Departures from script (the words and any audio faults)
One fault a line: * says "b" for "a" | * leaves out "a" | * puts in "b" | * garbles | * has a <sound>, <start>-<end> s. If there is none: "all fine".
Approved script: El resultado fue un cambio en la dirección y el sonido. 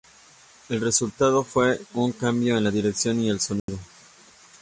* has a dropout, 3.6-3.7 s